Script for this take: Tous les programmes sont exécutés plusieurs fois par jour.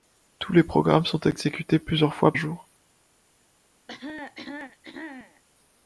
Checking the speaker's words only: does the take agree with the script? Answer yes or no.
no